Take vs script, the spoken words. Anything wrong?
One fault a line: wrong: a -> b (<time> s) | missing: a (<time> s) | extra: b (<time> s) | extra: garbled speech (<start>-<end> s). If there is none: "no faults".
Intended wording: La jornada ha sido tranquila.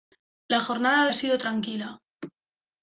no faults